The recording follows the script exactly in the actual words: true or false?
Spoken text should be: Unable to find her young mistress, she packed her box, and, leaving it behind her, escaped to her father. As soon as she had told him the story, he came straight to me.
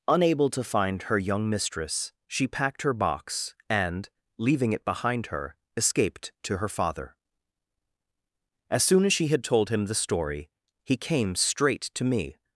true